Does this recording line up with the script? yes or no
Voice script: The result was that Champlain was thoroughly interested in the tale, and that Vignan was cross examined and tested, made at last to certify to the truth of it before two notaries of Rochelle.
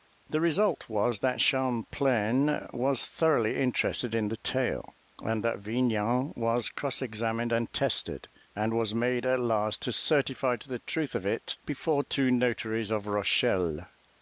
no